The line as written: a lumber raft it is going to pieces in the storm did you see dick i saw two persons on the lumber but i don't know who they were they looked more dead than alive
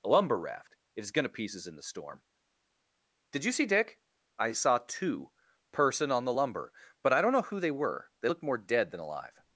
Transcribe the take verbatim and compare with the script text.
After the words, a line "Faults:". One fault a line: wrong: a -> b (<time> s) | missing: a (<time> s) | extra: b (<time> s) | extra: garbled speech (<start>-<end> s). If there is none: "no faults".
a lumber raft it is going to pieces in the storm did you see dick i saw two person on the lumber but i don't know who they were they looked more dead than alive
Faults:
wrong: persons -> person (5.7 s)